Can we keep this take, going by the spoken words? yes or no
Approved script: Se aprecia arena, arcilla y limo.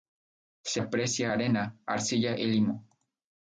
yes